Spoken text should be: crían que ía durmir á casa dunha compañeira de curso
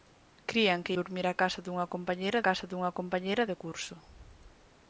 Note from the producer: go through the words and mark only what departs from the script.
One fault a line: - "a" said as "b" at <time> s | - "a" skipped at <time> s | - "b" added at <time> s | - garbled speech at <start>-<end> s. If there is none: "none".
- "ía" skipped at 0.9 s
- "casa dunha compañeira" added at 2.5 s